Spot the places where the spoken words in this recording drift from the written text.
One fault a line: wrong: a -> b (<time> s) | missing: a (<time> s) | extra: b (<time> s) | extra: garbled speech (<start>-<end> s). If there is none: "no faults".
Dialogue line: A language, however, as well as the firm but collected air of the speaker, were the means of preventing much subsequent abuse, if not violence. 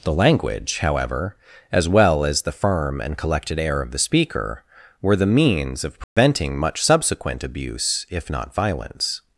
wrong: A -> The (0.0 s)
wrong: but -> and (3.0 s)